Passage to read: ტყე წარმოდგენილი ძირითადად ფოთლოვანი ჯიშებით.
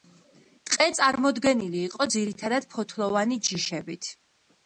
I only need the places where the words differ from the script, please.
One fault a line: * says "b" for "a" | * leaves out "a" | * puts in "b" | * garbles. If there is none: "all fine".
* puts in "იყო"